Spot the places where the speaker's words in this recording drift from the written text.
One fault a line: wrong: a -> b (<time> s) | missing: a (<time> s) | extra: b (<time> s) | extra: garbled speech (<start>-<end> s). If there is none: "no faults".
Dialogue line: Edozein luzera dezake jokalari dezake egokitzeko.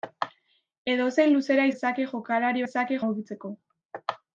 no faults